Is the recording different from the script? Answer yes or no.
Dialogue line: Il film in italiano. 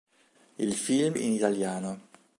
no